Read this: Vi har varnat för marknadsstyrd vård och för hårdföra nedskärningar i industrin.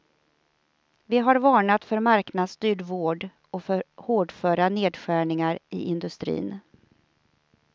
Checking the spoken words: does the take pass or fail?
pass